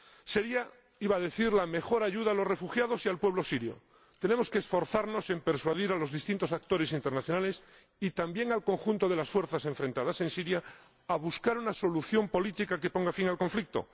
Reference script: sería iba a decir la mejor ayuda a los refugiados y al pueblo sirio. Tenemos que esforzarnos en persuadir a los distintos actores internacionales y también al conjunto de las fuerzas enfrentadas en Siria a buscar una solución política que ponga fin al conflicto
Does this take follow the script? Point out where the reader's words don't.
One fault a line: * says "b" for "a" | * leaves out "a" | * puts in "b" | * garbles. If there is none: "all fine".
all fine